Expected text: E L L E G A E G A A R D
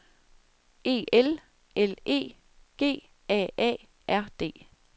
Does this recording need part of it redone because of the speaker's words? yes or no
yes